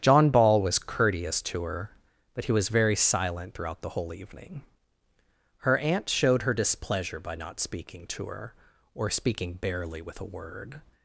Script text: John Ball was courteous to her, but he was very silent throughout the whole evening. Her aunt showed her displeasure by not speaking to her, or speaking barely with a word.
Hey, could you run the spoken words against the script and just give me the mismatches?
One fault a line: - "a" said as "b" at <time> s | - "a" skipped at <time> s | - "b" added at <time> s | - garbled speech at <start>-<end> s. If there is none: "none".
none